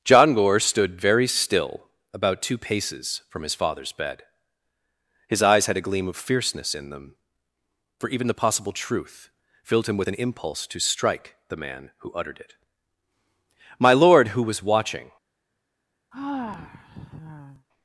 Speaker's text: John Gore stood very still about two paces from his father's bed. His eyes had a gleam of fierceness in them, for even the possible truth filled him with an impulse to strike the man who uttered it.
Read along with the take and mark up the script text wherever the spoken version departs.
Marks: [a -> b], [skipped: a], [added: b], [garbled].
John Gore stood very still about two paces from his father's bed. His eyes had a gleam of fierceness in them, for even the possible truth filled him with an impulse to strike the man who uttered it. [added: My lord who was watching]